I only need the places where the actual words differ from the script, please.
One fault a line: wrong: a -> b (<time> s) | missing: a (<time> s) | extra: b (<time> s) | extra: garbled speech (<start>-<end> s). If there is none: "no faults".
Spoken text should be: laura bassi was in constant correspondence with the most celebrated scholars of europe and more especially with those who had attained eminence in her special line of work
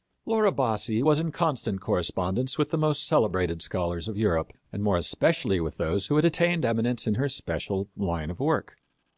no faults